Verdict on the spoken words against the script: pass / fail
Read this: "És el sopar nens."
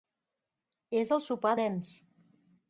pass